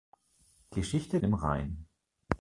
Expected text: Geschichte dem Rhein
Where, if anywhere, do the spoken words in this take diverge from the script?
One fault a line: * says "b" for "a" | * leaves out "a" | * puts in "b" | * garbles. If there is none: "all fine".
all fine